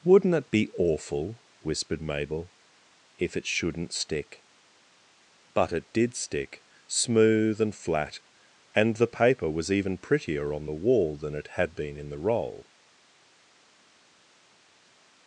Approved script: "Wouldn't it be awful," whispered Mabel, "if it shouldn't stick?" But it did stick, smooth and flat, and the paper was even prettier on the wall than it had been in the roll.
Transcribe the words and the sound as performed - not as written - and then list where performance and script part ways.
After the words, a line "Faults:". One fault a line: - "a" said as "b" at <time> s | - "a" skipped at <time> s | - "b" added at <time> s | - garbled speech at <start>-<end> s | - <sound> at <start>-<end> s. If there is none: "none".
"Wouldn't it be awful," whispered Mabel, "if it shouldn't stick?" But it did stick, smooth and flat, and the paper was even prettier on the wall than it had been in the roll.
Faults:
none